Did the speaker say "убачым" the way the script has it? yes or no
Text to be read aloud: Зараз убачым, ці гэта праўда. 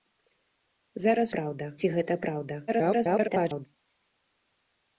no